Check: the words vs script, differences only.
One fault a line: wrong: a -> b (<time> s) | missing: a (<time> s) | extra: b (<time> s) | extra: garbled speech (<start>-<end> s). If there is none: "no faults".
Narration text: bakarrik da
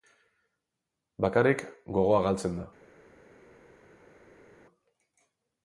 extra: gogoa galtzen (2.0 s)